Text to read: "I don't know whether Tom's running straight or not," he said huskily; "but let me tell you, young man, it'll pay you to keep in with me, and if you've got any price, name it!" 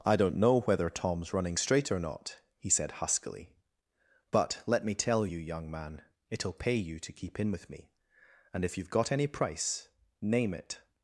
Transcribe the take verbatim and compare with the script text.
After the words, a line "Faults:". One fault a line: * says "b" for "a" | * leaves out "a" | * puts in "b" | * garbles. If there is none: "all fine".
"I don't know whether Tom's running straight or not," he said huskily; "but let me tell you, young man, it'll pay you to keep in with me, and if you've got any price, name it!"
Faults:
all fine